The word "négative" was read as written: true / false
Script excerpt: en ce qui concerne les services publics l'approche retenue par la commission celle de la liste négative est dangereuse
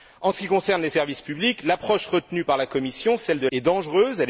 false